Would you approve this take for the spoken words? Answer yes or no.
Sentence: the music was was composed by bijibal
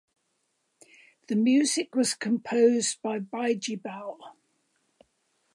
no